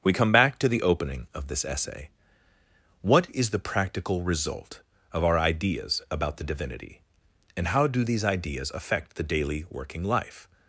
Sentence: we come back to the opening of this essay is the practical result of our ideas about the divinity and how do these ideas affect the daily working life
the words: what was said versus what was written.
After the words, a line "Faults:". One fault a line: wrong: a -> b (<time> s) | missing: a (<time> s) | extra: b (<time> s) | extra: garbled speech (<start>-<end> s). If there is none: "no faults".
we come back to the opening of this essay what is the practical result of our ideas about the divinity and how do these ideas affect the daily working life
Faults:
extra: what (3.0 s)